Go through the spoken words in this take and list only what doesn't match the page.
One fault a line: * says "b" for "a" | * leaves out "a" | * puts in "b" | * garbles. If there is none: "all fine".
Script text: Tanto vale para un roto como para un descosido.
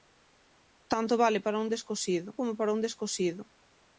* says "descosido" for "roto"